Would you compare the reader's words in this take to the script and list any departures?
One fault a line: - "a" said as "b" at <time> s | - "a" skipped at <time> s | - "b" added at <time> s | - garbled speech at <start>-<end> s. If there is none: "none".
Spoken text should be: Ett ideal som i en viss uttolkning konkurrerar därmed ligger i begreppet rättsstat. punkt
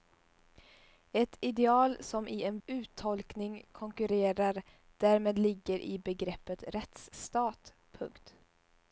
- "viss" skipped at 2.6 s